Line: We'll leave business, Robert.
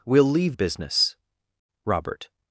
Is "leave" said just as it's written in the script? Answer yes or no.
yes